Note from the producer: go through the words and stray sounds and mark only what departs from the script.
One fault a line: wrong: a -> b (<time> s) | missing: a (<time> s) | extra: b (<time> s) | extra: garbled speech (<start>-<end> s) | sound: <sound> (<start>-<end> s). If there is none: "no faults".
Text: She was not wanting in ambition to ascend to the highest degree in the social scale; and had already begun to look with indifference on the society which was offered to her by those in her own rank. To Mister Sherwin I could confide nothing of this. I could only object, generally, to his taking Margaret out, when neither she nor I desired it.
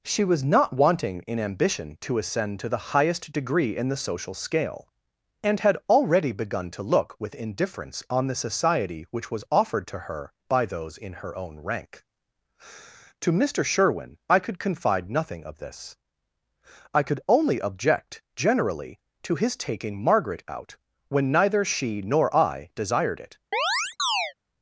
sound: chirp (23.5-24.3 s)